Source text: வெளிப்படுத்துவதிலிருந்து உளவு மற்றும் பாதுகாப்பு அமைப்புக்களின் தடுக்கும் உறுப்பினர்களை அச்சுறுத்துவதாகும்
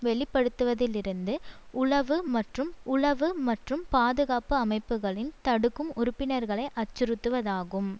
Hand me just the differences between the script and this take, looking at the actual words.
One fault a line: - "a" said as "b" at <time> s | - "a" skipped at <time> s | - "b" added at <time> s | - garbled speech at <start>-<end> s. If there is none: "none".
- "உளவு மற்றும்" added at 2.9 s